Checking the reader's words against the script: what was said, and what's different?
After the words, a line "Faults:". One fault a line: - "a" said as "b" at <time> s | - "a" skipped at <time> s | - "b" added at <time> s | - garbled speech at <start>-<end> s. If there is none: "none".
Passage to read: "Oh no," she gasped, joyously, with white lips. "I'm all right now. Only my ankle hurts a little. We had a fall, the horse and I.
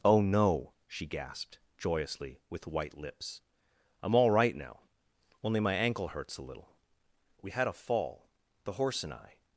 "Oh no," she gasped, joyously, with white lips. "I'm all right now. Only my ankle hurts a little. We had a fall, the horse and I.
Faults:
none